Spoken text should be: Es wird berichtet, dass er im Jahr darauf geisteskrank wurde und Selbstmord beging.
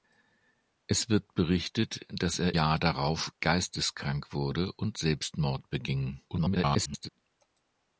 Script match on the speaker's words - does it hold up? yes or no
no